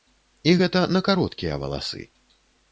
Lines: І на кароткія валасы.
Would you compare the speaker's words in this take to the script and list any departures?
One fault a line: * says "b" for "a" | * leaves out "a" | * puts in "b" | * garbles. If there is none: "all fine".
* puts in "гэта"